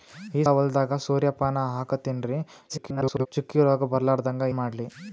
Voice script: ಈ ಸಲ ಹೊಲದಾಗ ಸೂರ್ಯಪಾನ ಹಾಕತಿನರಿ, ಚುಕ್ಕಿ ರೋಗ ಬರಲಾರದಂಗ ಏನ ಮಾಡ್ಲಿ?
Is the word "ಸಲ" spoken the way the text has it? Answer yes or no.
no